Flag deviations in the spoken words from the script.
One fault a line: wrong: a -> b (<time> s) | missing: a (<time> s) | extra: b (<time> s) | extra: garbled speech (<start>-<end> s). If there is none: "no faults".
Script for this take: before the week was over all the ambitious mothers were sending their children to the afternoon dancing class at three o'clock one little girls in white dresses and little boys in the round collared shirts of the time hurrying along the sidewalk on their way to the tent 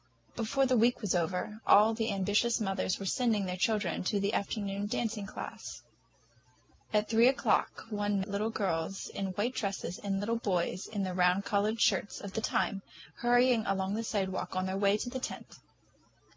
no faults